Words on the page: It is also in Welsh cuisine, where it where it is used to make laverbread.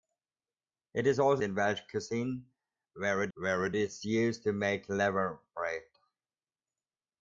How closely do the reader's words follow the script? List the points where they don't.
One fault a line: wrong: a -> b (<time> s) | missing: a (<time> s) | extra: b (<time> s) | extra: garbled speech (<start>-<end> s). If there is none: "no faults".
no faults